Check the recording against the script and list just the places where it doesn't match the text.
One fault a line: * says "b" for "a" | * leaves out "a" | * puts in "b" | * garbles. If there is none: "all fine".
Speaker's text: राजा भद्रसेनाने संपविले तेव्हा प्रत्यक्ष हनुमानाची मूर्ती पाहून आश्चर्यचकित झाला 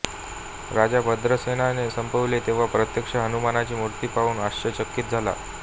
all fine